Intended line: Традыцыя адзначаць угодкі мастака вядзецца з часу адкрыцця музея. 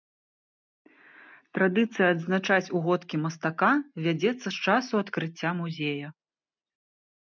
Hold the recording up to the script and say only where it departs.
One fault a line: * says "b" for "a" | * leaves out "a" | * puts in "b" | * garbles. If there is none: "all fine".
all fine